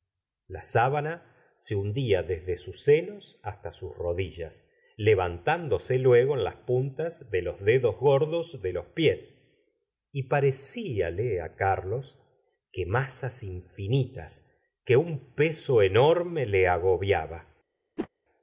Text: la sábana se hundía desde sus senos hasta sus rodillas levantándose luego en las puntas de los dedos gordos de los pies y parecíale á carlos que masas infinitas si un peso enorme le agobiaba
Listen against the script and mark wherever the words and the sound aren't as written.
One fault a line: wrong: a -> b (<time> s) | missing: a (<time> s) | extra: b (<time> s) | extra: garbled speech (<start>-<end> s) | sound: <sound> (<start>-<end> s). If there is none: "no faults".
wrong: si -> que (14.9 s)
sound: whoosh (18.0-18.1 s)